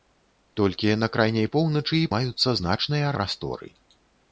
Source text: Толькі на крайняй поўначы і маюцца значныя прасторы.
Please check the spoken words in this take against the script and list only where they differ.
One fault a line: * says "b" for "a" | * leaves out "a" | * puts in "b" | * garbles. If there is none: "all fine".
all fine